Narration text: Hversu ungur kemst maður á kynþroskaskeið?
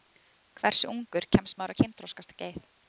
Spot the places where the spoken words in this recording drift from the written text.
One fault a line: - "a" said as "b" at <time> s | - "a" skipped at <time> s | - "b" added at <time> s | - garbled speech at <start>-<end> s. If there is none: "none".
none